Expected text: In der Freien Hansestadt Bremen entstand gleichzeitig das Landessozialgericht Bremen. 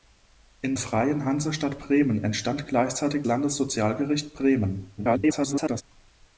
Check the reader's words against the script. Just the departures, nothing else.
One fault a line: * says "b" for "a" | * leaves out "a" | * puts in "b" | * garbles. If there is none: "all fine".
* leaves out "der"
* leaves out "das"
* garbles